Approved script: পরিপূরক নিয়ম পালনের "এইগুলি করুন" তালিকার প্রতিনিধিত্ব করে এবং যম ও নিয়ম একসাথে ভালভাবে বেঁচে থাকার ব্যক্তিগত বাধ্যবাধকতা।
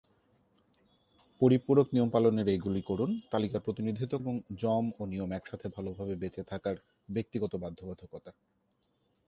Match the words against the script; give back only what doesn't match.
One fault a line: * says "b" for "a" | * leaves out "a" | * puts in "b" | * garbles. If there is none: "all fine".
* leaves out "করে"